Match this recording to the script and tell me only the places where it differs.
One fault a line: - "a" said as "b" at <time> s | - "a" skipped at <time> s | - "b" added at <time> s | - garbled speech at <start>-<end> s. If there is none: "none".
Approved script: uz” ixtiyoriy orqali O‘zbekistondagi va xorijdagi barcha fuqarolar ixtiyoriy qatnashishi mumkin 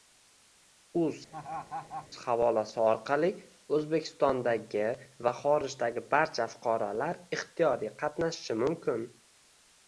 - "ixtiyoriy" said as "havolasi" at 2.2 s